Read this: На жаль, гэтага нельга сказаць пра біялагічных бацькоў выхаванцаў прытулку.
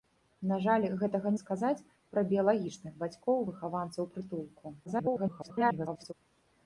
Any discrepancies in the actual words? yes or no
yes